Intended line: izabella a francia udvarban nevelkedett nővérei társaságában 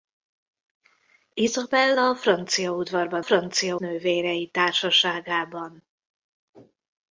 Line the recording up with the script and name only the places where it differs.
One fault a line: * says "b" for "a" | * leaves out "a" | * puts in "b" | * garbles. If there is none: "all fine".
* says "francia" for "nevelkedett"